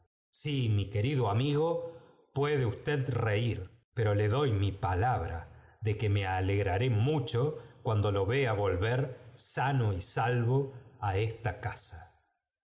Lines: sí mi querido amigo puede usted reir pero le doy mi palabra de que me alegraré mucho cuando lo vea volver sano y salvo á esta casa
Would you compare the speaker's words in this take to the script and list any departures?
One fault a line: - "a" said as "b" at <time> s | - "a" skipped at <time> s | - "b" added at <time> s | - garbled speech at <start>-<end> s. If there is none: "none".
none